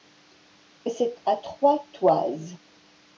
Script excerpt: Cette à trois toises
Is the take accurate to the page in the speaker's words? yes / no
yes